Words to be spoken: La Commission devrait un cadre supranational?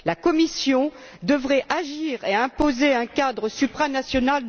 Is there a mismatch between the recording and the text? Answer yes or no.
yes